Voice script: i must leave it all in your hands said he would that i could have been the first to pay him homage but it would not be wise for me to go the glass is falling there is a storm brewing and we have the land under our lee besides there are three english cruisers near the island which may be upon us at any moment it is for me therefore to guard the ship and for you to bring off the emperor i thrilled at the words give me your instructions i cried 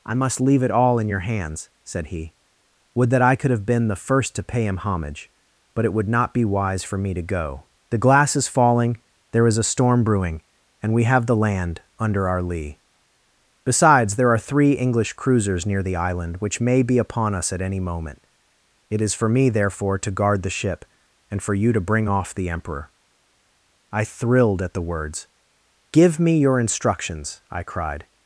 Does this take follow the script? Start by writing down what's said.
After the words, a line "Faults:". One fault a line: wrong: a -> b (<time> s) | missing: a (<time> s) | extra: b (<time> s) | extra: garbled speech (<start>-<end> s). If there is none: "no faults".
i must leave it all in your hands said he would that i could have been the first to pay him homage but it would not be wise for me to go the glass is falling there is a storm brewing and we have the land under our lee besides there are three english cruisers near the island which may be upon us at any moment it is for me therefore to guard the ship and for you to bring off the emperor i thrilled at the words give me your instructions i cried
Faults:
no faults